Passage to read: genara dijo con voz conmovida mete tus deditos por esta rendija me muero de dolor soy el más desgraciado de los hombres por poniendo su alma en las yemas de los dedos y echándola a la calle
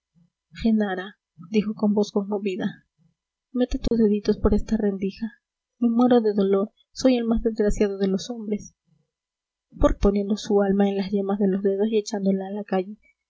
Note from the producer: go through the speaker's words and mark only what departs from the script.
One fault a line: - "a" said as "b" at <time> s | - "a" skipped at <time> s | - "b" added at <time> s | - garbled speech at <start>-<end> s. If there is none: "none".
none